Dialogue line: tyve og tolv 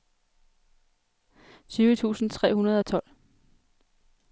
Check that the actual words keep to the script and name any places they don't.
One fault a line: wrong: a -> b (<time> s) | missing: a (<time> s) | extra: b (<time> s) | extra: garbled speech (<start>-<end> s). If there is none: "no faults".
extra: tusind tre hundrede (1.9 s)